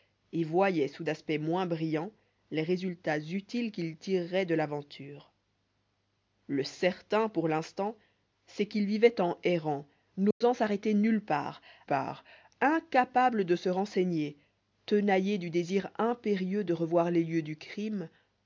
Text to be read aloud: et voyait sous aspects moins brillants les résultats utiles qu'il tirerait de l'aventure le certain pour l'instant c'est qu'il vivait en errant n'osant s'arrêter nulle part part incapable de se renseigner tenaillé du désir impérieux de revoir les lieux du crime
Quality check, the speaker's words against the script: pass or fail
pass